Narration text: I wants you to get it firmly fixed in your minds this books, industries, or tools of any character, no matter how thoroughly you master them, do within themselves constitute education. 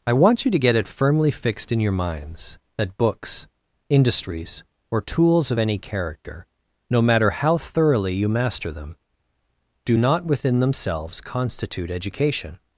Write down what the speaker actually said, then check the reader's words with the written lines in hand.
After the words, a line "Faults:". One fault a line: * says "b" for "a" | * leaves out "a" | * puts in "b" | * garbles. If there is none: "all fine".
I want you to get it firmly fixed in your minds that books, industries, or tools of any character, no matter how thoroughly you master them, do not within themselves constitute education.
Faults:
* says "want" for "wants"
* says "that" for "this"
* puts in "not"